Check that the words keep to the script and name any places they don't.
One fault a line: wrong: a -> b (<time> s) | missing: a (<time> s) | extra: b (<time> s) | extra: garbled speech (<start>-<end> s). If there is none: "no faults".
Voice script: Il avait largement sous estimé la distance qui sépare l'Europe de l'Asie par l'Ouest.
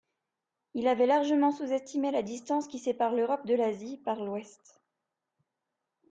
no faults